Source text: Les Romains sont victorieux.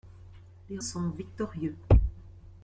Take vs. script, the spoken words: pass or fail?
fail